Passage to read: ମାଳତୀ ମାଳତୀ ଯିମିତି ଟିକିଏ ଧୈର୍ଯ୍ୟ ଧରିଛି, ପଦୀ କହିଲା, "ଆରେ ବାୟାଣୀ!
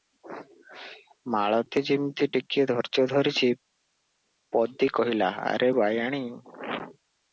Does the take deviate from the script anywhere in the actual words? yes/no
yes